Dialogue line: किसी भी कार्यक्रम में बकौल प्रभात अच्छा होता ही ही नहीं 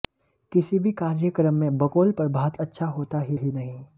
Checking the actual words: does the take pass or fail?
pass